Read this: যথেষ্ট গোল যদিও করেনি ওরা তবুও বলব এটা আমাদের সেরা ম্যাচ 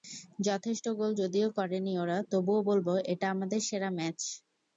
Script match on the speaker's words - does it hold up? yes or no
yes